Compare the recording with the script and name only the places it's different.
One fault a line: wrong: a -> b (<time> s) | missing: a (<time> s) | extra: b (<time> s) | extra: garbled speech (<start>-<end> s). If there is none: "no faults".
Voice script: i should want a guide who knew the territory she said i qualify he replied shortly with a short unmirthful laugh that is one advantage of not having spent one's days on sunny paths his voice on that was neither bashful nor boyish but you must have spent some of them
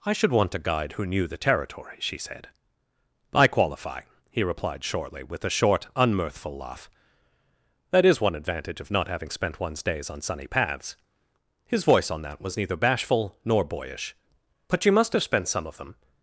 no faults